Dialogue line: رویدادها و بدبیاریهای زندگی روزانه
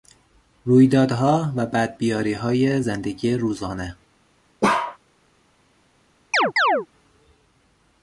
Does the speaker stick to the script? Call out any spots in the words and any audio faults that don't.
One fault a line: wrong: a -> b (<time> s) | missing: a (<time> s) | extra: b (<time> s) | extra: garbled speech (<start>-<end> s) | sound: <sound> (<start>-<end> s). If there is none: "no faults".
sound: bark (4.6-5.0 s)
sound: chirp (6.3-6.9 s)